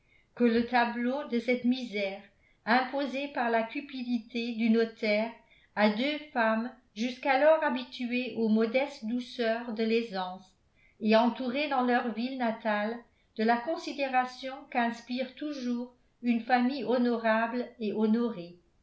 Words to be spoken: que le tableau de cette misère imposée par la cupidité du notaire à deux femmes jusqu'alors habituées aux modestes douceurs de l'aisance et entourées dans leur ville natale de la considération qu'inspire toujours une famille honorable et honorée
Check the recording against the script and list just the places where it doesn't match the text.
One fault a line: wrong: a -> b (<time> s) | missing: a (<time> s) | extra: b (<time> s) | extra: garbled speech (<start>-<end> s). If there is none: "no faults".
no faults